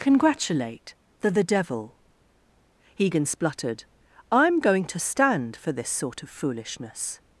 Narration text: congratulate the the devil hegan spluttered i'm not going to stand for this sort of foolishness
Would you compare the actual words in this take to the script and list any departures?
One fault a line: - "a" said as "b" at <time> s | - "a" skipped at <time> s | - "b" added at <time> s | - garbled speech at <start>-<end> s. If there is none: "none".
- "not" skipped at 4.6 s